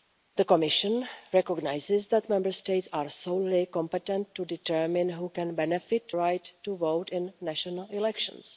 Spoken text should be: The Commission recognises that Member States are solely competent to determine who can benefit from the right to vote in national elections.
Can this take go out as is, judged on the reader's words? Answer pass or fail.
fail